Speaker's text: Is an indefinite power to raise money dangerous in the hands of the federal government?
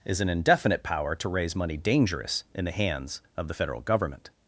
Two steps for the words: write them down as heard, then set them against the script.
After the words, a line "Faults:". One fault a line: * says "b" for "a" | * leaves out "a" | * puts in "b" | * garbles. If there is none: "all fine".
Is an indefinite power to raise money dangerous in the hands of the federal government?
Faults:
all fine